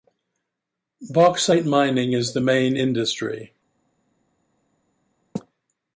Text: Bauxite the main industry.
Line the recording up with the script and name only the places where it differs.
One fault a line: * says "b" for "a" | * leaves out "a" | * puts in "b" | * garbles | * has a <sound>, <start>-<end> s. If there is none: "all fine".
* puts in "mining is"